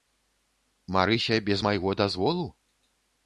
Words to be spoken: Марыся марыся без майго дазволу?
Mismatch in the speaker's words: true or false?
true